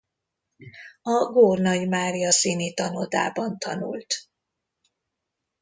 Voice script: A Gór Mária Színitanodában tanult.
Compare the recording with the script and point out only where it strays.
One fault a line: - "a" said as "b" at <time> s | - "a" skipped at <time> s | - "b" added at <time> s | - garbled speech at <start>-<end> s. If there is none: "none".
- "Nagy" added at 1.6 s